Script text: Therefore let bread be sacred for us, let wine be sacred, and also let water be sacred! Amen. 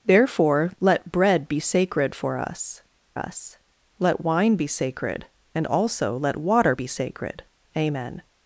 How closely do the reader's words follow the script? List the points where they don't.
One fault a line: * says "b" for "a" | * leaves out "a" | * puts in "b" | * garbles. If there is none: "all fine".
* puts in "us"